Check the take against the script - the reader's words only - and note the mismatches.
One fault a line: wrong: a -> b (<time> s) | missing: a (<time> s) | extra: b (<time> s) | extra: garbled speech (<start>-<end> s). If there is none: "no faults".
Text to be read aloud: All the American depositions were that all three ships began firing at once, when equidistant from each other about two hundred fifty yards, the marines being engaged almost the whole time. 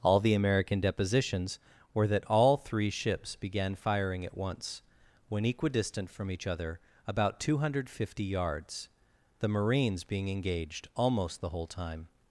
no faults